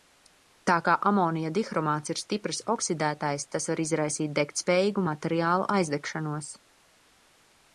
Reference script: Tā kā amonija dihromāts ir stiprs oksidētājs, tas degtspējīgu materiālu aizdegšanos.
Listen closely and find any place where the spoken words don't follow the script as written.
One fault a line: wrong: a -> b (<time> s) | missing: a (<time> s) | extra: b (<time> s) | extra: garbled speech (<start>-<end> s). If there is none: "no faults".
extra: var izraisīt (3.7 s)